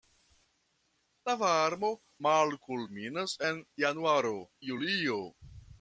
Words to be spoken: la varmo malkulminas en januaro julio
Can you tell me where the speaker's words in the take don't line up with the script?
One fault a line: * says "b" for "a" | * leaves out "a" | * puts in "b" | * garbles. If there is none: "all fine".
all fine